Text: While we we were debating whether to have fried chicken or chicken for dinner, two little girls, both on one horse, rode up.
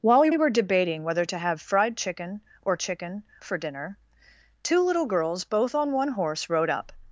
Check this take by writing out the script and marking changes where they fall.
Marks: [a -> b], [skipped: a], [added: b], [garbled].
While we we were debating whether to have fried chicken or chicken for dinner, two little girls, both on one horse, rode up.